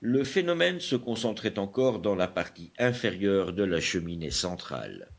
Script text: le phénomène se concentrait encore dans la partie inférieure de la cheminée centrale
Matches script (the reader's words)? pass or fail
pass